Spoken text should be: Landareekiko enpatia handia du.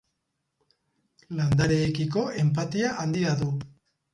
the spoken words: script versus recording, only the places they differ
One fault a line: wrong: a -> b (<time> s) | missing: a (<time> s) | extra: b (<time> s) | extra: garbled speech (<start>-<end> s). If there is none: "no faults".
no faults